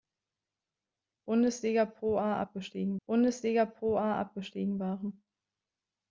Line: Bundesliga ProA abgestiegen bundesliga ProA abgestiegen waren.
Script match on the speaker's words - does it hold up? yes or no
yes